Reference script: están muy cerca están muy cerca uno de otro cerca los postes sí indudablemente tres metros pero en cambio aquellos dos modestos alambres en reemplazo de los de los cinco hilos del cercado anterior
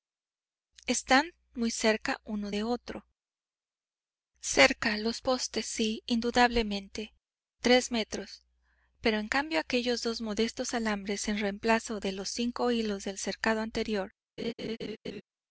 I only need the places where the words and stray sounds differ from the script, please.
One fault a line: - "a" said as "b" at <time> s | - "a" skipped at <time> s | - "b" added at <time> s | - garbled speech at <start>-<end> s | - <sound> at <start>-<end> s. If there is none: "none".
- "están muy cerca" skipped at 2.2 s
- "de los" skipped at 12.3 s
- laugh at 14.4-15.2 s